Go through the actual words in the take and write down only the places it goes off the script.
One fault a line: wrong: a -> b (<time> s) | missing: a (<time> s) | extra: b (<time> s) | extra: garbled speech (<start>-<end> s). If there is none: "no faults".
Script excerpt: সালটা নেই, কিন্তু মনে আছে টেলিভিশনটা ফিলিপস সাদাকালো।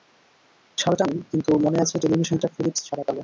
no faults